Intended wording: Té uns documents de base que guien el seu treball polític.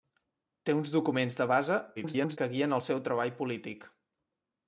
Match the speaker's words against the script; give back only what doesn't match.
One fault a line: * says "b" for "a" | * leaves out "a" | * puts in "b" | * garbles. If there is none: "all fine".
* garbles